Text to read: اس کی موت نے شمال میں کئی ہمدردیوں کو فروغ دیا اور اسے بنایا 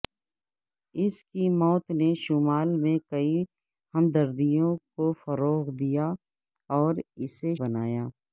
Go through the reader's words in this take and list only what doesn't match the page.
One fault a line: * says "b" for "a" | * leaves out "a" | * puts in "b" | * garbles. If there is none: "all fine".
all fine